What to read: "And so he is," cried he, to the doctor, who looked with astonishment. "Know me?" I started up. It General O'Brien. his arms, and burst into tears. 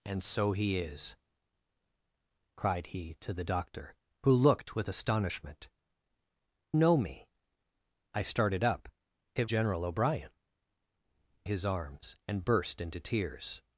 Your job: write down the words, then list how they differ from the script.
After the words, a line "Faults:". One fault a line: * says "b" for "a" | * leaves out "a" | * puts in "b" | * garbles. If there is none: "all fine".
"And so he is," cried he, to the doctor, who looked with astonishment. "Know me?" I started up. It General O'Brien. his arms, and burst into tears.
Faults:
all fine